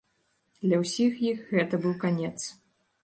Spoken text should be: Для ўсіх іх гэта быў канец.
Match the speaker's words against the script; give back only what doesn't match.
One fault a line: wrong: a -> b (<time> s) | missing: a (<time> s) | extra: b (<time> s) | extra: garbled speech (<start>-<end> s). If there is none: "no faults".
no faults